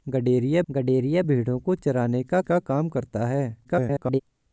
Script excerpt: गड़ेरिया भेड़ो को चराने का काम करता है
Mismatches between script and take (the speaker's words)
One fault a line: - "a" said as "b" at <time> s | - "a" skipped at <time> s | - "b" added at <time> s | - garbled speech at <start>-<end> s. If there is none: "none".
- "गड़ेरिया" added at 0.7 s
- "का" added at 2.4 s
- garbled speech at 3.6-4.2 s